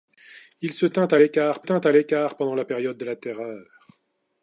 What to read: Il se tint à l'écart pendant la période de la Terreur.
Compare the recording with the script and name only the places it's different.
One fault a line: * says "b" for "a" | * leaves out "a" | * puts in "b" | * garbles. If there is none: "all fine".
* puts in "tint à l'écart"